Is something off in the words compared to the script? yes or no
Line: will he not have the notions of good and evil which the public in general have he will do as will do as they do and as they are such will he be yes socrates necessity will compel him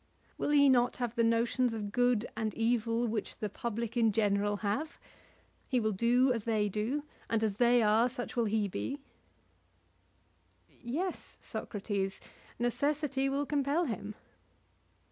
yes